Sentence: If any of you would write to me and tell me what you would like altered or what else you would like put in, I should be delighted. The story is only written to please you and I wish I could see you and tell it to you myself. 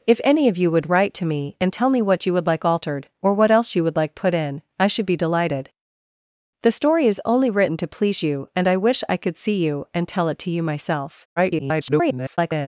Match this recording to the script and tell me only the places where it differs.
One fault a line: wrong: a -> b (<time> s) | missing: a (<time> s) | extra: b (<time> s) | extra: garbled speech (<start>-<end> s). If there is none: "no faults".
extra: garbled speech (11.4-12.7 s)